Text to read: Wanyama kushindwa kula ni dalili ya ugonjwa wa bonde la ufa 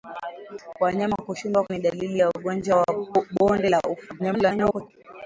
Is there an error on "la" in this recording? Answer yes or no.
no